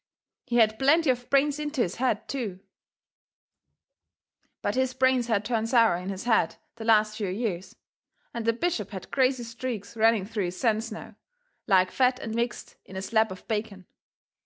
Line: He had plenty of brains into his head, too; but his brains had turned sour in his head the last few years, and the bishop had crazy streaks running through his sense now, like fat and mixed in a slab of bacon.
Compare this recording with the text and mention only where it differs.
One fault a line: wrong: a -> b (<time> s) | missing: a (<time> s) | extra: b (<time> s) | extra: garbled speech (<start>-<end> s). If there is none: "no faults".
no faults